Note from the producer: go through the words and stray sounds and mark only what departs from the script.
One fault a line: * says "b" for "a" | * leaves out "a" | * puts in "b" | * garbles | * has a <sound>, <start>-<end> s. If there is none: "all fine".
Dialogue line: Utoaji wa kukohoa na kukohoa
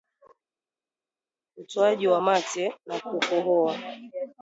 * says "mate" for "kukohoa"